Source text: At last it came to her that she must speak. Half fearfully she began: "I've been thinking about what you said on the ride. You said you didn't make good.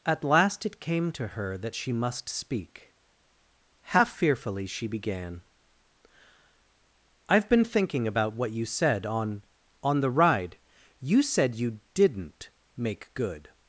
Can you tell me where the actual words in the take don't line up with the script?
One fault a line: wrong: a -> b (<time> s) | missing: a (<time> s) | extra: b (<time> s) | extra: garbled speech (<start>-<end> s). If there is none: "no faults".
extra: on (9.8 s)